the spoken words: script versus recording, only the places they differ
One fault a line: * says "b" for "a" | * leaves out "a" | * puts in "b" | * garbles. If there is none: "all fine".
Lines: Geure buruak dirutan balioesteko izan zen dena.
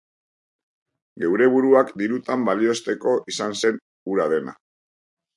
* puts in "hura"